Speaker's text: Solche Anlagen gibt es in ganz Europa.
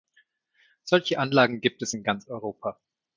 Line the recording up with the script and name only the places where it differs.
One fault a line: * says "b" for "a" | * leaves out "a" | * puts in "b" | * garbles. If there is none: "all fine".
all fine